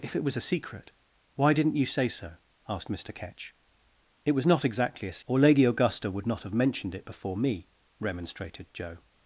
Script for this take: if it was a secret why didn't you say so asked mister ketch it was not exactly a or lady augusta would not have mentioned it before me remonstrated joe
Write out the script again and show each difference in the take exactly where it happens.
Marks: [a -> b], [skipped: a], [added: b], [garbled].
if it was a secret why didn't you say so asked mister ketch it was not exactly a or lady augusta would not have mentioned it before me remonstrated joe